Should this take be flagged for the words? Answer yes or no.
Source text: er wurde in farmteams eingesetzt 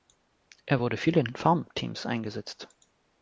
yes